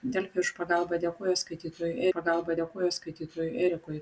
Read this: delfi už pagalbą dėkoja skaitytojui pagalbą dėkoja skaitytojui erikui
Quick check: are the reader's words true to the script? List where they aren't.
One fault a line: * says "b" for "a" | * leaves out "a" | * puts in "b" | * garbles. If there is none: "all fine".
all fine